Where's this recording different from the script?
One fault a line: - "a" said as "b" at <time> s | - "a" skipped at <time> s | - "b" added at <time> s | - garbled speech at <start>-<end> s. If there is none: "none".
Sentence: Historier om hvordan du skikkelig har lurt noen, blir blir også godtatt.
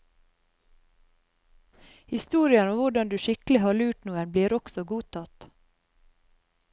- "blir" skipped at 4.6 s